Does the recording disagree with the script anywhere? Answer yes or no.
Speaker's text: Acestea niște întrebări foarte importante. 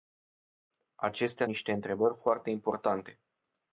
no